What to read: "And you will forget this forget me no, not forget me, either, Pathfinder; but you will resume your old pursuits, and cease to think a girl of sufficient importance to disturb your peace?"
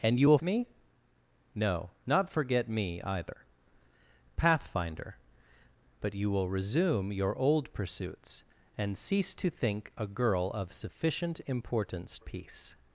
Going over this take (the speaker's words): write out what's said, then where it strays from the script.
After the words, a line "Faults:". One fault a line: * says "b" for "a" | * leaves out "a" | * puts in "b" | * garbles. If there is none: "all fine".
"And you will me no, not forget me, either, Pathfinder; but you will resume your old pursuits, and cease to think a girl of sufficient importance peace?"
Faults:
* leaves out "forget this forget"
* leaves out "to disturb your"